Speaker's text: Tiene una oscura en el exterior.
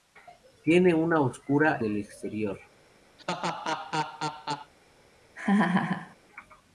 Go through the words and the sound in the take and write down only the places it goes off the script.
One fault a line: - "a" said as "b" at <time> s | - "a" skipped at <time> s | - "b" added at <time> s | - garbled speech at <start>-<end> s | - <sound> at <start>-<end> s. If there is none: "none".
- "en" skipped at 1.8 s
- laugh at 3.2-4.7 s
- laugh at 5.4-6.2 s